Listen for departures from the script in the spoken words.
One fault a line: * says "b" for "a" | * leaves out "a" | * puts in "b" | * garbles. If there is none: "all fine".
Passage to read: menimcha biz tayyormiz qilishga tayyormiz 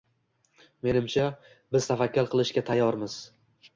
* says "tavakkal" for "tayyormiz"